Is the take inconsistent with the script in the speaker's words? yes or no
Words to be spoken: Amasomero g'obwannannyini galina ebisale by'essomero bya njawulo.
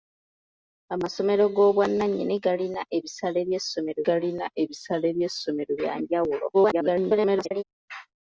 yes